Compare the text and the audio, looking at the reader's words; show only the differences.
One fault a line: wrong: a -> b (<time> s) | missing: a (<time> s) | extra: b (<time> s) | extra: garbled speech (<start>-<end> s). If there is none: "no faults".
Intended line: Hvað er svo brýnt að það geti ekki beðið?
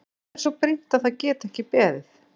no faults